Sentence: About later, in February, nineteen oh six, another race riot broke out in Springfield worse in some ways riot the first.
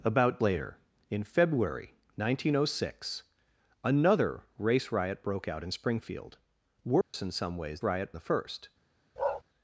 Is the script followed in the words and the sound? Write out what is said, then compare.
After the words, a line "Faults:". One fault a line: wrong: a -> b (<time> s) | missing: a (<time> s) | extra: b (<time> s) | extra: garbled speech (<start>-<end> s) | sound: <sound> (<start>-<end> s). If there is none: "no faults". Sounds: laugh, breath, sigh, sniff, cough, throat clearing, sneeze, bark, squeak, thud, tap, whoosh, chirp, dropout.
About later, in February, nineteen oh six, another race riot broke out in Springfield worse in some ways riot the first.
Faults:
sound: dropout (7.0-7.1 s)
sound: bark (9.2-9.4 s)